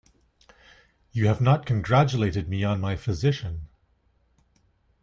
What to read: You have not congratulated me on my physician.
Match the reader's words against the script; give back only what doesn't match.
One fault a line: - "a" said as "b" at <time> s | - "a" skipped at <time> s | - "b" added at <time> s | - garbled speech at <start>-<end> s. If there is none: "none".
none